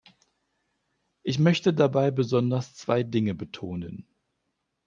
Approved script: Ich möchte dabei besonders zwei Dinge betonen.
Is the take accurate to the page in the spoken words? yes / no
yes